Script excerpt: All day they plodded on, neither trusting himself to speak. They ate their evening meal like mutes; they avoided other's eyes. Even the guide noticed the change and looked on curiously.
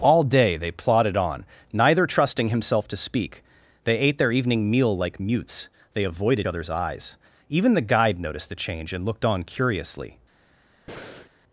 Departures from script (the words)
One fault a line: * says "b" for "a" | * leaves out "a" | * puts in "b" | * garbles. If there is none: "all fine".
all fine